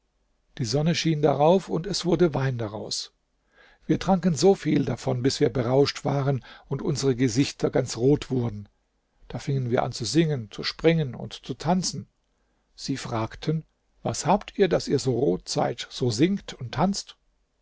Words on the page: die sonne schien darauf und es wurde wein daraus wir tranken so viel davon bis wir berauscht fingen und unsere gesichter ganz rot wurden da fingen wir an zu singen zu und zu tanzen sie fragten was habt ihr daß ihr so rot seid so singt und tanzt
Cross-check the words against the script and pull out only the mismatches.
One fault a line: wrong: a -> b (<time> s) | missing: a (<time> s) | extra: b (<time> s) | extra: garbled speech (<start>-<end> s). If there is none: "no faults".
wrong: fingen -> waren (6.1 s)
extra: springen (10.6 s)